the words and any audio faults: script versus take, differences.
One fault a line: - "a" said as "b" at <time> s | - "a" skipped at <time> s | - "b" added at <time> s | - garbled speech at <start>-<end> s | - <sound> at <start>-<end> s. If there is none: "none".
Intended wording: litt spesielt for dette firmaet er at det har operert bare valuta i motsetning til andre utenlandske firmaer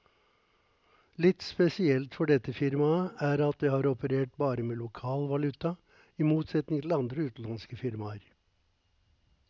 - "med lokal" added at 4.7 s